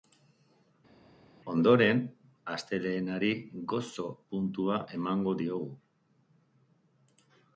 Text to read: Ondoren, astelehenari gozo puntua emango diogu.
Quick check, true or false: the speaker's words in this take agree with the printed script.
true